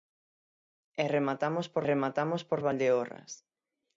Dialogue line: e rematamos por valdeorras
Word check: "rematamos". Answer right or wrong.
right